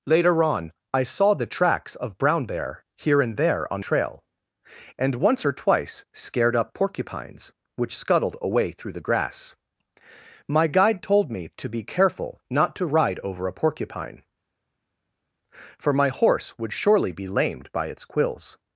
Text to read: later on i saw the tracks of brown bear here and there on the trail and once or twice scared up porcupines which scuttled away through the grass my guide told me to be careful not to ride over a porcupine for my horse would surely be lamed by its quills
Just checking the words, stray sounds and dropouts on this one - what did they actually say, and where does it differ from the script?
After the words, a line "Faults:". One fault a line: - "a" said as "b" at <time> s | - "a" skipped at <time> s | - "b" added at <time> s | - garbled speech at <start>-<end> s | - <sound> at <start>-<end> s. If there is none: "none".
later on i saw the tracks of brown bear here and there on trail and once or twice scared up porcupines which scuttled away through the grass my guide told me to be careful not to ride over a porcupine for my horse would surely be lamed by its quills
Faults:
- "the" skipped at 3.8 s